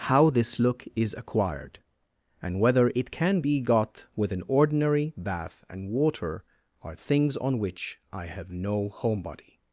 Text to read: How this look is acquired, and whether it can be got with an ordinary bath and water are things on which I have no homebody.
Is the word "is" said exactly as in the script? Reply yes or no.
yes